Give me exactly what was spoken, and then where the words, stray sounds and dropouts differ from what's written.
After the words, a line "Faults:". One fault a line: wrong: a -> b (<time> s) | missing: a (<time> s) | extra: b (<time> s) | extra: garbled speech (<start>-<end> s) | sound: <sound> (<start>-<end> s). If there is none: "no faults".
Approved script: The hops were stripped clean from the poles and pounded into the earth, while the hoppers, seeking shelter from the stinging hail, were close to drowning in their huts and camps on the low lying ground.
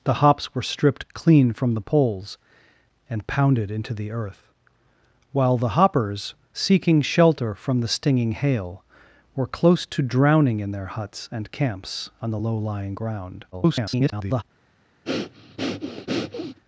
The hops were stripped clean from the poles and pounded into the earth, while the hoppers, seeking shelter from the stinging hail, were close to drowning in their huts and camps on the low lying ground. [garbled]
Faults:
extra: garbled speech (13.5-14.4 s)
sound: breath (15.0-16.6 s)